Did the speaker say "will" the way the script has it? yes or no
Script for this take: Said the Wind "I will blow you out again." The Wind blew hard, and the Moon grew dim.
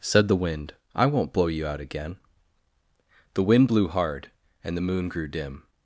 no